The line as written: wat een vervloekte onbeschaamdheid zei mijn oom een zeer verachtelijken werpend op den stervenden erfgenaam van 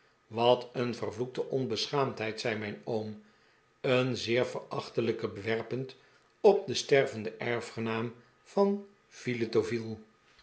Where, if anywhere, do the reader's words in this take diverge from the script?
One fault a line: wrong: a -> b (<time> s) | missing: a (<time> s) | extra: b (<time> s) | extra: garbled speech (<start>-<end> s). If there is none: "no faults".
no faults